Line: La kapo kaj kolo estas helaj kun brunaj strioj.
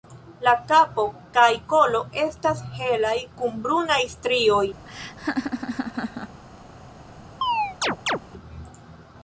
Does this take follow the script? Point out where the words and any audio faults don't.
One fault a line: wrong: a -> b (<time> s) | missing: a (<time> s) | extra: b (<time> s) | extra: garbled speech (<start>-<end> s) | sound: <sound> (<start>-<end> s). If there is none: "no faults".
sound: laugh (4.9-6.4 s)
sound: chirp (7.4-8.2 s)